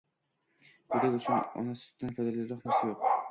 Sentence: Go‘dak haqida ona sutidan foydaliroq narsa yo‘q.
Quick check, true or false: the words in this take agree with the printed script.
false